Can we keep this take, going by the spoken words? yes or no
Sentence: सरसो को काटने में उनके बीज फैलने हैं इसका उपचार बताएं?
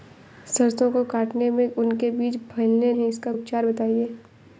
yes